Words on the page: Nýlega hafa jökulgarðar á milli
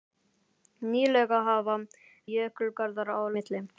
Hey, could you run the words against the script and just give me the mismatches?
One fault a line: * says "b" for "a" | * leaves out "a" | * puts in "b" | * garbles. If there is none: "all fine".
all fine